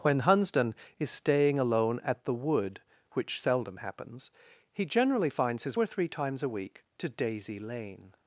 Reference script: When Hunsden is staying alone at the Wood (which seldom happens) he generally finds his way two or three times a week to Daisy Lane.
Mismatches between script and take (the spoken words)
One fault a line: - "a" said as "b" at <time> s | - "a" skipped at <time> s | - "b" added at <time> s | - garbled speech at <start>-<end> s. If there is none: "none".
- "way two" skipped at 5.8 s